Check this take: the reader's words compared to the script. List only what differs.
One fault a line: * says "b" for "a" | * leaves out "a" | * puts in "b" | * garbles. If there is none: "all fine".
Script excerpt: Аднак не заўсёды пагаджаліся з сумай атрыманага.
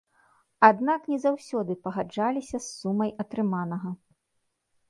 all fine